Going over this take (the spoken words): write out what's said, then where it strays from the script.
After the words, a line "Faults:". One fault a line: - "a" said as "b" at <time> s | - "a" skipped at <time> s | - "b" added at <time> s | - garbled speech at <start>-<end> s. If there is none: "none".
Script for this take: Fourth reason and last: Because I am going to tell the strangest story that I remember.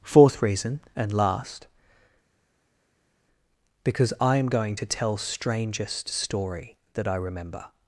Fourth reason and last: Because I am going to tell strangest story that I remember.
Faults:
- "the" skipped at 5.2 s